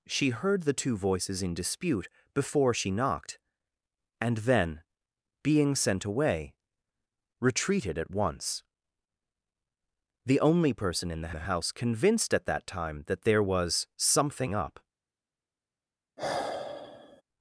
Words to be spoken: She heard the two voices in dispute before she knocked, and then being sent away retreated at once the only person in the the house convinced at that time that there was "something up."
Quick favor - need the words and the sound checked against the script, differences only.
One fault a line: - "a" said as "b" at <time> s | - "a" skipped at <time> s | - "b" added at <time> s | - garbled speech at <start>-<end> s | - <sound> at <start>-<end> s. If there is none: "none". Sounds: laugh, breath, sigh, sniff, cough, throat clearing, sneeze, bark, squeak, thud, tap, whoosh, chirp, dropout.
- sigh at 16.2-17.2 s